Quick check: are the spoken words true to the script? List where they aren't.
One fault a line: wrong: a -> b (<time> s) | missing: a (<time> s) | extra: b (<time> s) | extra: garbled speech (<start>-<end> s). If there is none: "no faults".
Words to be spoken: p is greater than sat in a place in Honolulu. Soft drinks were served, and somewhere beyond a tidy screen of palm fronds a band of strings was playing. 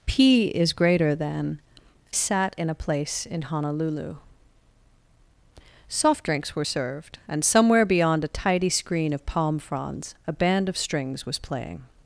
no faults